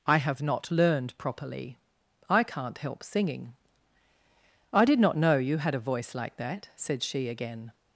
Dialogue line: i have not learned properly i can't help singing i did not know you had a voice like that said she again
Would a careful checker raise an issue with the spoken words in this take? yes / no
no